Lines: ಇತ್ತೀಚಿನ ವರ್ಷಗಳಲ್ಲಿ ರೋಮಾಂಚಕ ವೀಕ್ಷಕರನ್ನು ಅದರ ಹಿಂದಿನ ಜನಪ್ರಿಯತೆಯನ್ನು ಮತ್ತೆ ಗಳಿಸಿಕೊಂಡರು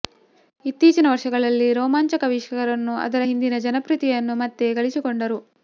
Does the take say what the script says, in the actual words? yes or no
yes